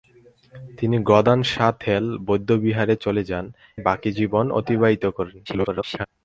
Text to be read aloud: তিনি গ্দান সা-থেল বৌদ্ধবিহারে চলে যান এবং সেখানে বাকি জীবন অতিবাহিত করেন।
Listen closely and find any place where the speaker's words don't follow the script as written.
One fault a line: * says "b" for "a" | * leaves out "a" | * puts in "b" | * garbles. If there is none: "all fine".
* leaves out "এবং সেখানে"
* garbles